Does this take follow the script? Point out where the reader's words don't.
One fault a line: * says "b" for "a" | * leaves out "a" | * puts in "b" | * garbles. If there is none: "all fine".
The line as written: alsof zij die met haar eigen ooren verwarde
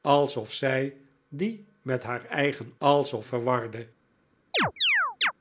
* says "alsof" for "ooren"